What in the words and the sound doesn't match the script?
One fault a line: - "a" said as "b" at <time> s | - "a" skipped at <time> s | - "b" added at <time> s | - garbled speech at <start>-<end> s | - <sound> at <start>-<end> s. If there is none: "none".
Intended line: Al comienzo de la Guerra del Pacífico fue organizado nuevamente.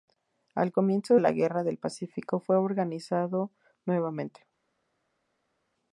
- "de" skipped at 1.2 s